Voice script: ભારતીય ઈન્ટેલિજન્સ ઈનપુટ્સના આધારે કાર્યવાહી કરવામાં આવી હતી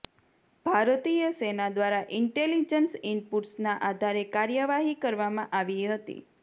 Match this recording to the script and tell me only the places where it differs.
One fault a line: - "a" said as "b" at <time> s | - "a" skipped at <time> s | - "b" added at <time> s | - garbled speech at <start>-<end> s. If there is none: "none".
- "સેના દ્વારા" added at 1.4 s